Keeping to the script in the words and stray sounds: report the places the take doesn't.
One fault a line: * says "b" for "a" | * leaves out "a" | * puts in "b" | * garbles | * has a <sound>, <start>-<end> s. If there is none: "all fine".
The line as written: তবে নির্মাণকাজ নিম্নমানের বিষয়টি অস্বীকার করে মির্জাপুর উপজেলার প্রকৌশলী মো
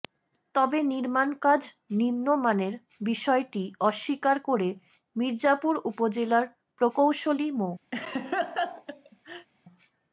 * has a laugh, 7.9-9.5 s